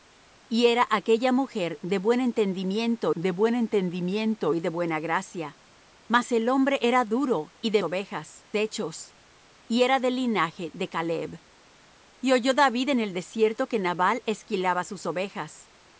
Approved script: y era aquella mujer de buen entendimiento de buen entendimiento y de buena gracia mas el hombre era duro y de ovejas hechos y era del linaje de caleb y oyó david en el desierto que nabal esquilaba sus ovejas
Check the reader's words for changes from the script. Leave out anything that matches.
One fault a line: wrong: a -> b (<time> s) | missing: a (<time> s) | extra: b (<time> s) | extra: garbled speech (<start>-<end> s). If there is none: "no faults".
no faults